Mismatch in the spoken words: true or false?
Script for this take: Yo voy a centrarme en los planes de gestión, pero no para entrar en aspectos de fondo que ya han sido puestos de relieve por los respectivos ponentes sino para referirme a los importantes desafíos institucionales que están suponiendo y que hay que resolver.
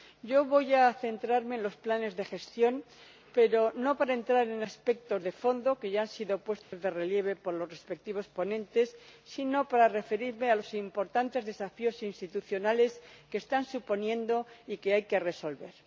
false